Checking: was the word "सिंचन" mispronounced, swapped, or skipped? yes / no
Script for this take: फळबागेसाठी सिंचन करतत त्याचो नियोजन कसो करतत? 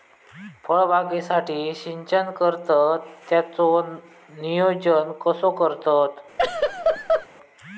no